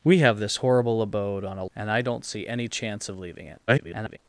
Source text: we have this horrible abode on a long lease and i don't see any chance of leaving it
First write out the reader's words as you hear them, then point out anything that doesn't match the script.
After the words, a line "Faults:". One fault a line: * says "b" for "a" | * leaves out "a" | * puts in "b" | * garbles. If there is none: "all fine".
we have this horrible abode on a and i don't see any chance of leaving it [garbled]
Faults:
* leaves out "long lease"
* garbles